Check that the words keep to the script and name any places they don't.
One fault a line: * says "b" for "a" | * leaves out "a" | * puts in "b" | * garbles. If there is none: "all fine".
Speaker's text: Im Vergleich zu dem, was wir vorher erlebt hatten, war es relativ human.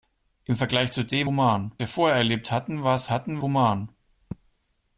* says "human" for "was"
* says "hatten" for "relativ"